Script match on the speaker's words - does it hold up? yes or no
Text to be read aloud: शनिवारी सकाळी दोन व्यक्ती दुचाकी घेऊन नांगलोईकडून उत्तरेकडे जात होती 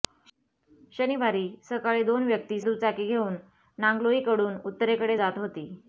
yes